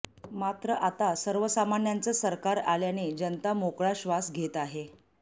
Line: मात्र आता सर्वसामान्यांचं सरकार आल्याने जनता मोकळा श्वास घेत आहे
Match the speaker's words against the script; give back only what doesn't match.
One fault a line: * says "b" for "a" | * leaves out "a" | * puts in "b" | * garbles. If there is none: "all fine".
all fine